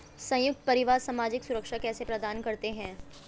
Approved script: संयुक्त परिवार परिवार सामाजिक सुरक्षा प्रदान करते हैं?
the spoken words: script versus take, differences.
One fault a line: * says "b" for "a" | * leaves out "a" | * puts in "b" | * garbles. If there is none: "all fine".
* leaves out "परिवार"
* puts in "कैसे"